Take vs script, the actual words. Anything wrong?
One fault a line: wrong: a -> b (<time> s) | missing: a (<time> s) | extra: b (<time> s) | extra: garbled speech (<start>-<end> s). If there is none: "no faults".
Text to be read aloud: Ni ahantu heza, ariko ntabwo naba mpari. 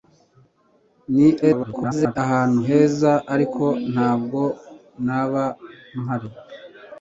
extra: garbled speech (1.4-2.2 s)